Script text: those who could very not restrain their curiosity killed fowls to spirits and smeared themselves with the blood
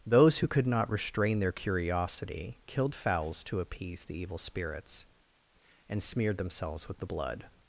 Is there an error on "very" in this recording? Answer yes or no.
yes